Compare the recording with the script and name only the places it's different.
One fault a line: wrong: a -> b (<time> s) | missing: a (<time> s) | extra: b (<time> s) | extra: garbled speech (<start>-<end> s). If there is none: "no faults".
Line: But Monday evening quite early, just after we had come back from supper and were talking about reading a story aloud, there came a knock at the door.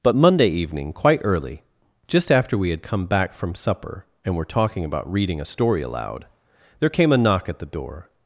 no faults